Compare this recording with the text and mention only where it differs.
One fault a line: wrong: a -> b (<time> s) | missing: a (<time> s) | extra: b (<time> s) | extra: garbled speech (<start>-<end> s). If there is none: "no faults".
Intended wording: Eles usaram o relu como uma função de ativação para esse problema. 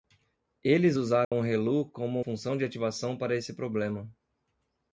missing: uma (2.2 s)